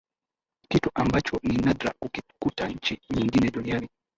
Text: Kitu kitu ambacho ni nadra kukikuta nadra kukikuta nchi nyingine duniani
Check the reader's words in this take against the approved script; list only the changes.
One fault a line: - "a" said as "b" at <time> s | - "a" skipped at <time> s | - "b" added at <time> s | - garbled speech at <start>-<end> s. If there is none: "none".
- "kitu" skipped at 0.9 s
- "nadra kukikuta" skipped at 2.7 s